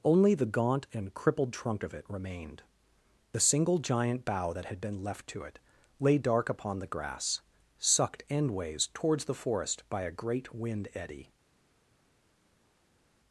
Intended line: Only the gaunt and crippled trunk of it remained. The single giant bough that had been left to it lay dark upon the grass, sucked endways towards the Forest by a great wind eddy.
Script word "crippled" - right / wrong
right